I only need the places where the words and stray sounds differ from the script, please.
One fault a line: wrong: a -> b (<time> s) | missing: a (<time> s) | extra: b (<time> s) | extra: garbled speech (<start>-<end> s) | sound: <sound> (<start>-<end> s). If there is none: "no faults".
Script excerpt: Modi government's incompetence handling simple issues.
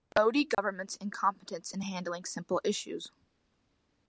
sound: dropout (0.5-0.6 s)
extra: in (1.7 s)